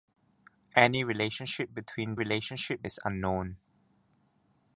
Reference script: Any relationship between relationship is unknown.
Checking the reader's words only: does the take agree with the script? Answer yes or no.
yes